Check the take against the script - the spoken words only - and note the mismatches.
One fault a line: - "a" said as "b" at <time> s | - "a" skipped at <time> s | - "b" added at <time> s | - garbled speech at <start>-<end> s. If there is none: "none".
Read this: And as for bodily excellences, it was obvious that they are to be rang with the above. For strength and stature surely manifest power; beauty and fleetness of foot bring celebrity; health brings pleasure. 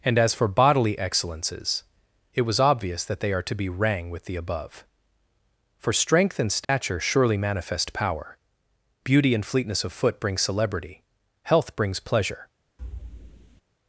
none